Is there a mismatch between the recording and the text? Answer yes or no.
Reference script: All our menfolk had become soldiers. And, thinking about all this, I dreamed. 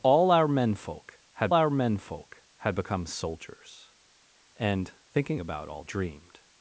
yes